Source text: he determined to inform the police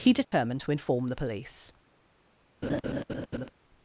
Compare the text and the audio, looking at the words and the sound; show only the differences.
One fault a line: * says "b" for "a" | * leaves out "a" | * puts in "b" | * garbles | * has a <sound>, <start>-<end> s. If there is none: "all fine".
* has a dropout, 0.2-0.3 s
* has a laugh, 2.6-3.5 s